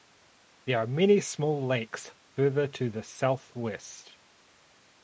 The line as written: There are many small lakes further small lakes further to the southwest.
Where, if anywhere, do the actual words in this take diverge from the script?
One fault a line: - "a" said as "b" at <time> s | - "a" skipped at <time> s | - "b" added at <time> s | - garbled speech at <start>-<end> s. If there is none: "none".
- "small lakes further" skipped at 2.7 s